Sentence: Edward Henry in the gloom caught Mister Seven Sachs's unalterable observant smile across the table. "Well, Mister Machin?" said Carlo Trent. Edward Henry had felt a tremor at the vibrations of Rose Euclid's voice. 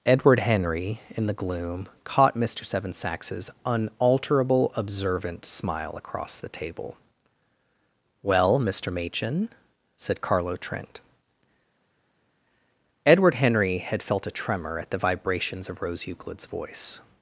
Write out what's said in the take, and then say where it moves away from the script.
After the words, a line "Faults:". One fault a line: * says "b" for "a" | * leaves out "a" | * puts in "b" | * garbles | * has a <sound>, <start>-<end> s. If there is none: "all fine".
Edward Henry in the gloom caught Mister Seven Sachs's unalterable observant smile across the table. "Well, Mister Machin?" said Carlo Trent. Edward Henry had felt a tremor at the vibrations of Rose Euclid's voice.
Faults:
all fine